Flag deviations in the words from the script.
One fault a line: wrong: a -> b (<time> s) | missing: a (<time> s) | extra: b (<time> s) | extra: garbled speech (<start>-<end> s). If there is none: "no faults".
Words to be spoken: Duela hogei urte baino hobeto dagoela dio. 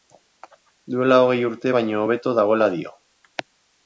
no faults